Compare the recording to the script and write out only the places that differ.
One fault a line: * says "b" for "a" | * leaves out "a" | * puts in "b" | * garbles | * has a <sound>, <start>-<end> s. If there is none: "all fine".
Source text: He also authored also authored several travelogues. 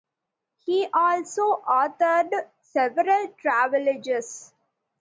* leaves out "also authored"